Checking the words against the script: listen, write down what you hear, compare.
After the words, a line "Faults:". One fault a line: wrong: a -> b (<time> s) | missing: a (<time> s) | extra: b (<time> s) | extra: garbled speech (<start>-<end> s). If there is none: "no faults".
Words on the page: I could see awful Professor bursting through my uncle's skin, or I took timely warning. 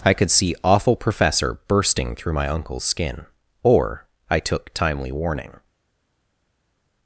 I could see awful Professor bursting through my uncle's skin, or I took timely warning.
Faults:
no faults